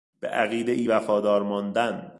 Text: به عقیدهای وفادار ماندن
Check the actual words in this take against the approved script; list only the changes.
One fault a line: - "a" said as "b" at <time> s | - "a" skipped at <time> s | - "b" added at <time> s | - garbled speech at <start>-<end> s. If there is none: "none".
none